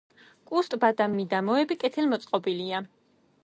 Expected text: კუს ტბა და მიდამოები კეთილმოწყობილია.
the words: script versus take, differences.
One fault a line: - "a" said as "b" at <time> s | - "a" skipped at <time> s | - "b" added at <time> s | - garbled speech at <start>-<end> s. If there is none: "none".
none